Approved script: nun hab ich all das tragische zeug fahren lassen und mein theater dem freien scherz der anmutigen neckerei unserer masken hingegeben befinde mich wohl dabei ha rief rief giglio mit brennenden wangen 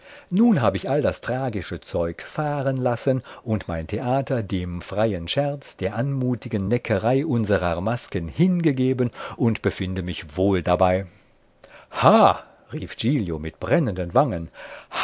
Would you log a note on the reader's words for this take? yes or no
yes